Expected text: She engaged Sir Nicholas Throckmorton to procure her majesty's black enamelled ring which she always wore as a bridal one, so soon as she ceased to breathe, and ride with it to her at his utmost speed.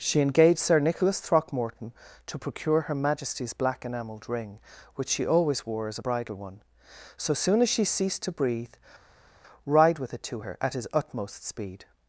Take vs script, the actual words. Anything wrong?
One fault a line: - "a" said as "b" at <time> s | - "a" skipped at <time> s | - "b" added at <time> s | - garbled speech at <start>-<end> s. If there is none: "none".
- "and" skipped at 8.7 s